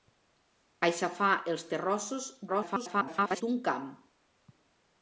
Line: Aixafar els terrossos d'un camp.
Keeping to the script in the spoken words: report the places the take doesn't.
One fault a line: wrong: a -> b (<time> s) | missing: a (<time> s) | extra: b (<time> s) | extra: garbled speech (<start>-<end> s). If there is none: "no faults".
extra: garbled speech (2.5-3.4 s)